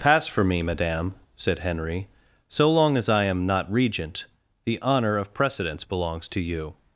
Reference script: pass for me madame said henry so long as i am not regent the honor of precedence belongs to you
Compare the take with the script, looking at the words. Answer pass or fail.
pass